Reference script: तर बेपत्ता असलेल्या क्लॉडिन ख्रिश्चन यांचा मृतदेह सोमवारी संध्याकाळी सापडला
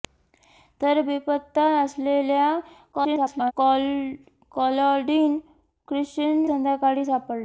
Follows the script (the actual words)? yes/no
no